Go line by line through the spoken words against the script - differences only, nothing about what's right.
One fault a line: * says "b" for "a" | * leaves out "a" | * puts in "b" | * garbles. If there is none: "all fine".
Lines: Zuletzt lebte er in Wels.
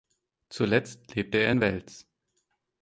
all fine